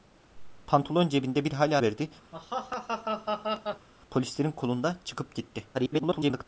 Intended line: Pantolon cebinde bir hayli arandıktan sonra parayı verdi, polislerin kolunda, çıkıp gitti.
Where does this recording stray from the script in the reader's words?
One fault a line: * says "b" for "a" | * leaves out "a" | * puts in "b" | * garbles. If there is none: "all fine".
* leaves out "arandıktan sonra parayı"
* garbles